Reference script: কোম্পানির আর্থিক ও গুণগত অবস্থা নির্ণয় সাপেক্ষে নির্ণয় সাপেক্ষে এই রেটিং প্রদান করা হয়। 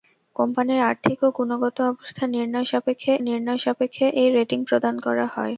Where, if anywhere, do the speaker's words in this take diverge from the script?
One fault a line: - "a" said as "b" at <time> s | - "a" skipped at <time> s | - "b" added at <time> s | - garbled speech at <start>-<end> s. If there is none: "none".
none